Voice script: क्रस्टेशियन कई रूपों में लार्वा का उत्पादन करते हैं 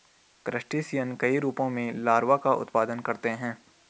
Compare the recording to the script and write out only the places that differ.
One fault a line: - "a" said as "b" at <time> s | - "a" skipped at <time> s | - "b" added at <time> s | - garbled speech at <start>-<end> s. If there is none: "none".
none